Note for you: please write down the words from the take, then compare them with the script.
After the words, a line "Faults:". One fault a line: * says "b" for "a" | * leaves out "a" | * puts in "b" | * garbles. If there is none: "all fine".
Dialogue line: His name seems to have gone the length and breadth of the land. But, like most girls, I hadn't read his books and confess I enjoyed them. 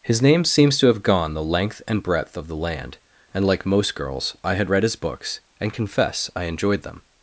His name seems to have gone the length and breadth of the land. And, like most girls, I had read his books and confess I enjoyed them.
Faults:
* says "And" for "But"
* says "had" for "hadn't"